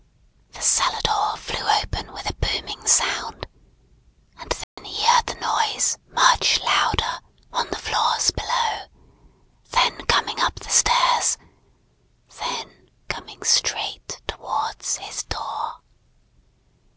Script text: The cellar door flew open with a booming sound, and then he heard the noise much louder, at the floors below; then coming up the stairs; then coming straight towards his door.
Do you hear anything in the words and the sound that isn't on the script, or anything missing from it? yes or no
yes